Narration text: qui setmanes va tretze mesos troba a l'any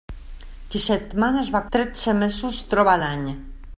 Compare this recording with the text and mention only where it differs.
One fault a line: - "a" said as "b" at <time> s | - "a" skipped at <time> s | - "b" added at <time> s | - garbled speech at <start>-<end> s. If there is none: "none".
none